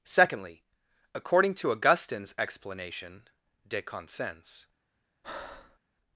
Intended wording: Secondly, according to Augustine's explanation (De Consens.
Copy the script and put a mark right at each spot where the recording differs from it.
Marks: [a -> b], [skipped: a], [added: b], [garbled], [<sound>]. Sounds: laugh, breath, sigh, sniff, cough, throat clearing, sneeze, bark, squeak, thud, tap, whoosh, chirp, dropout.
Secondly, according to Augustine's explanation (De Consens. [breath]